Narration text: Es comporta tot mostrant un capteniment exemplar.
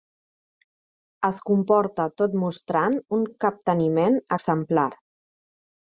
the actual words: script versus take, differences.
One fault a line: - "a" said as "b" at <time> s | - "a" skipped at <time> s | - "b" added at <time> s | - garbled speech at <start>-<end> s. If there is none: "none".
none